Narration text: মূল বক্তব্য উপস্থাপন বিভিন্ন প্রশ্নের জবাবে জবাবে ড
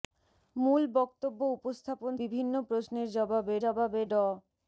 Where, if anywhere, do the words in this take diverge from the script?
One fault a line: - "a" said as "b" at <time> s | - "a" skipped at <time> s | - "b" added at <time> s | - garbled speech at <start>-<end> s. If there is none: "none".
none